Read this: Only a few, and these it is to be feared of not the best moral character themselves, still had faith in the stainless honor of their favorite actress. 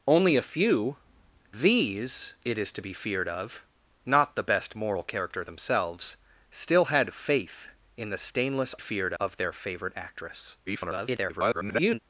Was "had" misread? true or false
false